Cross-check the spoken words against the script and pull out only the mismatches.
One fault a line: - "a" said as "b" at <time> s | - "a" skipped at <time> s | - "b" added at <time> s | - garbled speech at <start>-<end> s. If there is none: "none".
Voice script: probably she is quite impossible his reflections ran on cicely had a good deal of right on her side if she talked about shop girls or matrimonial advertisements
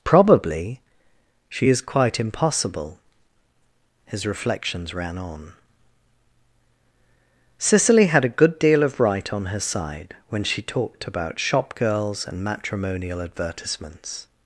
- "if" said as "when" at 10.3 s
- "or" said as "and" at 12.3 s